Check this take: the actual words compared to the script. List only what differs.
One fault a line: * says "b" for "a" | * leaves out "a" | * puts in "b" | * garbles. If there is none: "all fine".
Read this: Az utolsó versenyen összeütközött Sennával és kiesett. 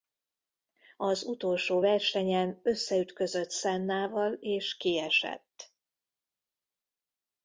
all fine